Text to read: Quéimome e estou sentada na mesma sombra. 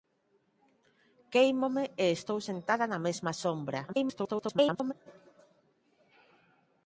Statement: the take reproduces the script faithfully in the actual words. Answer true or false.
false